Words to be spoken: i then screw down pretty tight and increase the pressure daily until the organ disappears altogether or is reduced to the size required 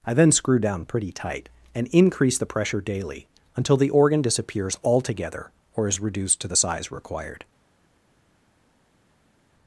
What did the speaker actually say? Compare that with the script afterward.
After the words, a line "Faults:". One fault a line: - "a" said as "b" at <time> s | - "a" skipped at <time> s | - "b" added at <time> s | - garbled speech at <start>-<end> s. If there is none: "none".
i then screw down pretty tight and increase the pressure daily until the organ disappears altogether or is reduced to the size required
Faults:
none